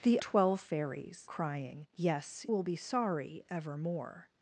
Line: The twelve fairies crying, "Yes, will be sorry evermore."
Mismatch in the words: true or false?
false